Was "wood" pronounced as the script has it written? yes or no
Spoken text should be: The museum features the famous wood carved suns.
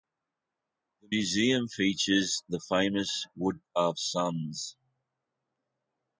yes